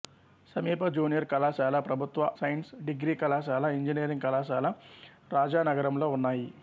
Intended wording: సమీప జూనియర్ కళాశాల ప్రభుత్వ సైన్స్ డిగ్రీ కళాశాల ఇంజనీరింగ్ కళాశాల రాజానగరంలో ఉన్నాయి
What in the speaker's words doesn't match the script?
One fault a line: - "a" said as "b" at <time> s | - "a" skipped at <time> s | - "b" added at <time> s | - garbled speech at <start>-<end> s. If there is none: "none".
none